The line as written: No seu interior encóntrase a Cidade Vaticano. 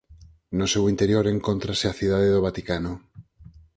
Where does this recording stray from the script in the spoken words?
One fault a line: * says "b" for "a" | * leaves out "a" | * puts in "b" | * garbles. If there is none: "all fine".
* puts in "do"